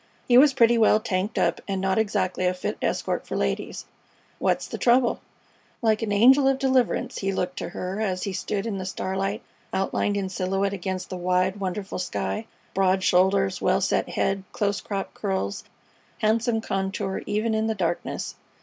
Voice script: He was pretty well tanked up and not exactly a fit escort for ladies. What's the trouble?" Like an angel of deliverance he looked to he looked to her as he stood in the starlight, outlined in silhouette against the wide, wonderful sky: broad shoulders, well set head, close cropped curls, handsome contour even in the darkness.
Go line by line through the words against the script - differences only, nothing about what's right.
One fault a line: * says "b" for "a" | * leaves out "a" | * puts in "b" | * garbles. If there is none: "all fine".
* leaves out "he looked to"